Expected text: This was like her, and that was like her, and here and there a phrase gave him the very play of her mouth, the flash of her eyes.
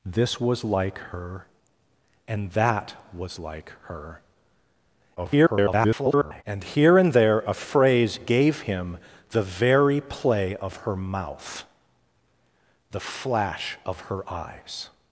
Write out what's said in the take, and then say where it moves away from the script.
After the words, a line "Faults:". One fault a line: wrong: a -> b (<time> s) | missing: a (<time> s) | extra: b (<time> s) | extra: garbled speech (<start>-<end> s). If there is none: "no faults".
This was like her, and that was like her, [garbled] and here and there a phrase gave him the very play of her mouth, the flash of her eyes.
Faults:
extra: garbled speech (5.2-6.4 s)